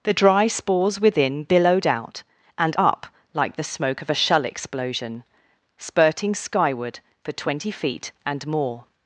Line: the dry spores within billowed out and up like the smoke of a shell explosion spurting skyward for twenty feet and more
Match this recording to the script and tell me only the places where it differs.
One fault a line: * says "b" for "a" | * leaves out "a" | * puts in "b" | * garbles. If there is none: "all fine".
all fine